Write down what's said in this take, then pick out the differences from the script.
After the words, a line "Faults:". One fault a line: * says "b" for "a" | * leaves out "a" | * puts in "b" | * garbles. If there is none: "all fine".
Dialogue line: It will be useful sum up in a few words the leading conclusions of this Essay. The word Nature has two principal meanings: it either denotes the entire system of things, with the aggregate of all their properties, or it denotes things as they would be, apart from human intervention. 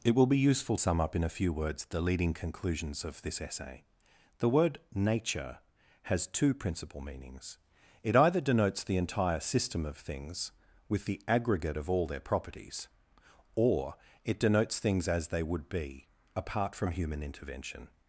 It will be useful sum up in a few words the leading conclusions of this Essay. The word Nature has two principal meanings: it either denotes the entire system of things, with the aggregate of all their properties, or it denotes things as they would be, apart from human intervention.
Faults:
all fine